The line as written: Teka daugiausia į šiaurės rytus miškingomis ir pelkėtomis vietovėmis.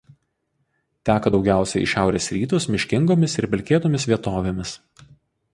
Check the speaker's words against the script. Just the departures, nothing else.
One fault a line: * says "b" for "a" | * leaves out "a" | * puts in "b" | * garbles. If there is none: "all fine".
all fine